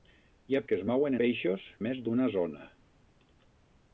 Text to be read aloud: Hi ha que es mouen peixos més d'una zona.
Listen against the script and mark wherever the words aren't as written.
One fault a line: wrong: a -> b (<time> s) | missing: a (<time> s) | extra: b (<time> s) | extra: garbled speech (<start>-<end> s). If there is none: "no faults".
no faults